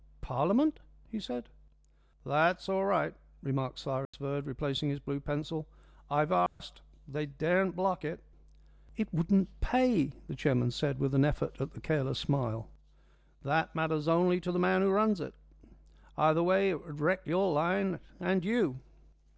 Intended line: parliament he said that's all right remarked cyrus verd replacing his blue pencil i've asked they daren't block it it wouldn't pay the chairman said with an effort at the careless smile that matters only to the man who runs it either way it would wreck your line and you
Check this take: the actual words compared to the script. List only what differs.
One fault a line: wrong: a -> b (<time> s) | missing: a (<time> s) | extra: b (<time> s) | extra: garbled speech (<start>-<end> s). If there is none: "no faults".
no faults